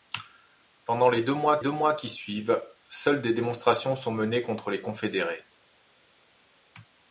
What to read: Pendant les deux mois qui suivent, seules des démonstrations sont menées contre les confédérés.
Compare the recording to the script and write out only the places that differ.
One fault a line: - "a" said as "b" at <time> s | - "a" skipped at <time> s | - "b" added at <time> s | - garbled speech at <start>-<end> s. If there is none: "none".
- "deux mois" added at 1.6 s